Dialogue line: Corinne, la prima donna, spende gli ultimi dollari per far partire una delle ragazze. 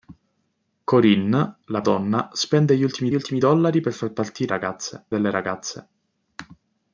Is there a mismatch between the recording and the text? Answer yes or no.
yes